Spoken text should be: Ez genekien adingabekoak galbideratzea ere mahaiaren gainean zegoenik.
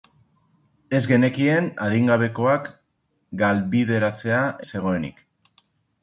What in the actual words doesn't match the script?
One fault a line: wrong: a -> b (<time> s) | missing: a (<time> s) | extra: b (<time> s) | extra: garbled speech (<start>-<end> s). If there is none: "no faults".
missing: ere mahaiaren gainean (4.4 s)